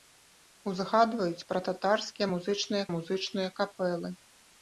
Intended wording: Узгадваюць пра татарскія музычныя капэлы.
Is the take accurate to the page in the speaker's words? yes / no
no